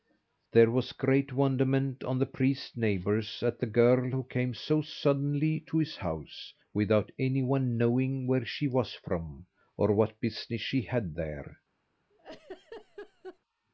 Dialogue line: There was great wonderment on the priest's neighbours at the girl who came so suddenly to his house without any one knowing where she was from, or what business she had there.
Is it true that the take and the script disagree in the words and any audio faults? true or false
true